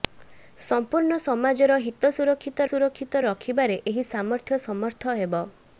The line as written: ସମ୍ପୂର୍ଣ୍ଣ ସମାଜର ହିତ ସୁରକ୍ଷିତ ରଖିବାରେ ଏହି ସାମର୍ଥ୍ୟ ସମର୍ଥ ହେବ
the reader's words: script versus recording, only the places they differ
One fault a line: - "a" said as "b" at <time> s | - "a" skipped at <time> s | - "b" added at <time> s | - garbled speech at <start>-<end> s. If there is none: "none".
- "ସୁରକ୍ଷିତ" added at 2.7 s